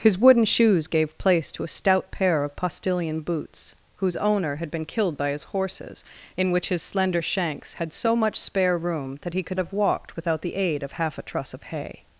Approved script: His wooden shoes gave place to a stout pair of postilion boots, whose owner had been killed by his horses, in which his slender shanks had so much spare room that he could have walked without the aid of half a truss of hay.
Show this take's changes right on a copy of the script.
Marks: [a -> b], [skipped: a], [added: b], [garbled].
His wooden shoes gave place to a stout pair of postilion boots, whose owner had been killed by his horses, in which his slender shanks had so much spare room that he could have walked without the aid of half a truss of hay.